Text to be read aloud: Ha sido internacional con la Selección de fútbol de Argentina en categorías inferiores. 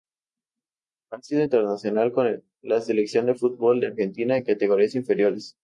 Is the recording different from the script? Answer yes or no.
no